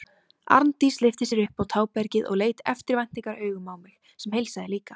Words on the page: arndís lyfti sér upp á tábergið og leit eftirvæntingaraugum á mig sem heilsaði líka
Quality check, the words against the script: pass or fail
pass